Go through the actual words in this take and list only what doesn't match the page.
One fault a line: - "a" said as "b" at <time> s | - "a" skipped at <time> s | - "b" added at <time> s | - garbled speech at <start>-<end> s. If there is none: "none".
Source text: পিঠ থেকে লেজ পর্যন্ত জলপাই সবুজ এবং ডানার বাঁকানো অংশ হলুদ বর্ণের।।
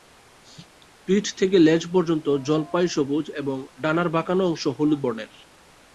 none